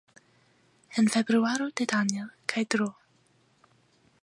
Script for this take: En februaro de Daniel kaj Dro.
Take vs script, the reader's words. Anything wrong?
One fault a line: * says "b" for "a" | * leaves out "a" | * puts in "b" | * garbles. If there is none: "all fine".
all fine